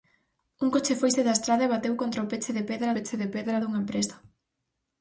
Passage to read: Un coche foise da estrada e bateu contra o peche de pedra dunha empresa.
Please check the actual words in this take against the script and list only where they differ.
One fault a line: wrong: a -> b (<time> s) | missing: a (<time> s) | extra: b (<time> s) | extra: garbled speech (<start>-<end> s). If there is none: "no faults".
extra: peche de pedra (2.9 s)